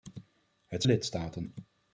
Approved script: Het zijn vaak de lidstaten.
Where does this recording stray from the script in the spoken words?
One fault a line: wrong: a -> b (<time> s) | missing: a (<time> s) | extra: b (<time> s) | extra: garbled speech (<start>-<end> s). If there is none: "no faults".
missing: zijn vaak de (0.8 s)